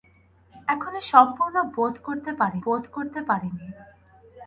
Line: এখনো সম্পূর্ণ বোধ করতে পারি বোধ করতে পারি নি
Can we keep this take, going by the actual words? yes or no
yes